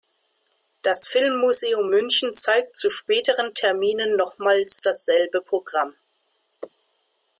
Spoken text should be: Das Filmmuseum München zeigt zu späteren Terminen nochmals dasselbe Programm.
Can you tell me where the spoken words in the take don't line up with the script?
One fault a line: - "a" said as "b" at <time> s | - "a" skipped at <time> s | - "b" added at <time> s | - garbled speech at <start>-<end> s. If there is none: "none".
none